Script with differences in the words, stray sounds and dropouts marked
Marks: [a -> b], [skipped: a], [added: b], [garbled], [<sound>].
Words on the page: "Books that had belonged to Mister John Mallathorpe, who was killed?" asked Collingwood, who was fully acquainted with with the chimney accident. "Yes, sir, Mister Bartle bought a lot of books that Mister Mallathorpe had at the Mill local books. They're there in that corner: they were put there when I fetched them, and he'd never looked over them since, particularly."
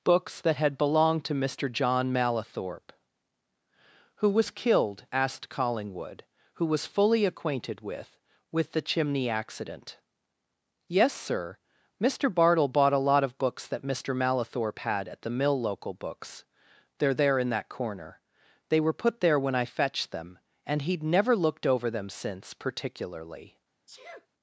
"Books that had belonged to Mister John Mallathorpe, who was killed?" asked Collingwood, who was fully acquainted with with the chimney accident. "Yes, sir, Mister Bartle bought a lot of books that Mister Mallathorpe had at the Mill local books. They're there in that corner: they were put there when I fetched them, and he'd never looked over them since, particularly." [sneeze]